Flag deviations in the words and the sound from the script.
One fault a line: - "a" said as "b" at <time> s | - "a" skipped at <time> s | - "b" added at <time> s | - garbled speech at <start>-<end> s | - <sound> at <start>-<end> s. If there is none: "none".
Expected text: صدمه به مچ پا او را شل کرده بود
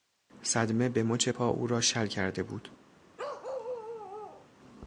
- bark at 3.2-4.5 s